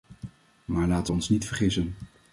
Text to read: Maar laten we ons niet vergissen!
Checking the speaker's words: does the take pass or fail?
pass